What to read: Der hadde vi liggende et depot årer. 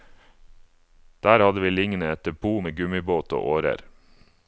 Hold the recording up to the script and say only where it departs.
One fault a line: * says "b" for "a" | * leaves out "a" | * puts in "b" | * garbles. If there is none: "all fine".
* puts in "med gummibåt og"